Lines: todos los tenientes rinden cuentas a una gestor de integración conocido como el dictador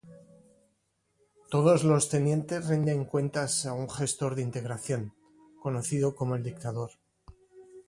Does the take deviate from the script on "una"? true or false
true